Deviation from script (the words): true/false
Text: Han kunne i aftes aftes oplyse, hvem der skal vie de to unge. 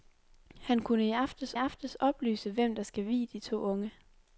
false